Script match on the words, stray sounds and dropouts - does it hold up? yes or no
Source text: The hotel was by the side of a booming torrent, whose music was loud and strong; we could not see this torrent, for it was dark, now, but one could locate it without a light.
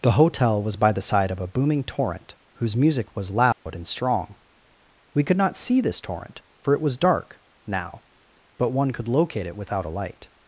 no